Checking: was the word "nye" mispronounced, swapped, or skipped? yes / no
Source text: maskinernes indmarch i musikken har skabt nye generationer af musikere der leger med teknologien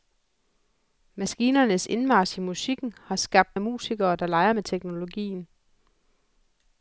yes